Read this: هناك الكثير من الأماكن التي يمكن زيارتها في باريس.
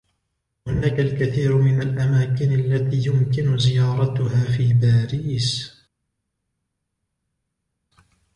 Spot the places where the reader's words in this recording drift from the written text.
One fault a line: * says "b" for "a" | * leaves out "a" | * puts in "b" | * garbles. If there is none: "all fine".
all fine